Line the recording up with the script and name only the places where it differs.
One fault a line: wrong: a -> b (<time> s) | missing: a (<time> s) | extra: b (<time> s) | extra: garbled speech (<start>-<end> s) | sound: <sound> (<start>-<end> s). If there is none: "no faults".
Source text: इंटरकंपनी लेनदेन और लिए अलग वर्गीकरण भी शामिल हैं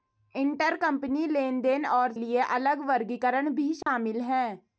sound: dropout (3.8-3.9 s)